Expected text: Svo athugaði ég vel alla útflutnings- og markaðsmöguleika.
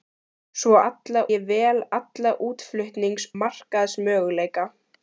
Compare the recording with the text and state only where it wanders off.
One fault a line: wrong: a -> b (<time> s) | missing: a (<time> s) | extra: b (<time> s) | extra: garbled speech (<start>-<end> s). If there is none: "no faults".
wrong: athugaði -> alla (0.9 s)
missing: og (3.3 s)